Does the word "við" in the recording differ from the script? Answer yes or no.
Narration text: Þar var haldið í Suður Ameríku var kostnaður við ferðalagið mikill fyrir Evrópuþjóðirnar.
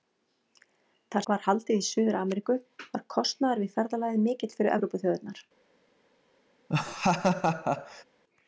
no